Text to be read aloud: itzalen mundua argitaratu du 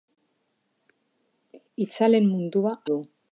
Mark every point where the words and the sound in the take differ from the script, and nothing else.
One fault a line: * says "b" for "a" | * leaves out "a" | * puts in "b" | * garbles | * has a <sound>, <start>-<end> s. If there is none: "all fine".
* leaves out "argitaratu"